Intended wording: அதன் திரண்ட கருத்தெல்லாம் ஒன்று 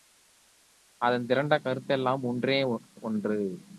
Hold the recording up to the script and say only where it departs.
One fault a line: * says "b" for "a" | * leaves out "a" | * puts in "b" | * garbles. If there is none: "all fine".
* puts in "ஒன்றே"